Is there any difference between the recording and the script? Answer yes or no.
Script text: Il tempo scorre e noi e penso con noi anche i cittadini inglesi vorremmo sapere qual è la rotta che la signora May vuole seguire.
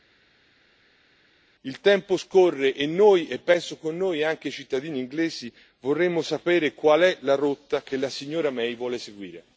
no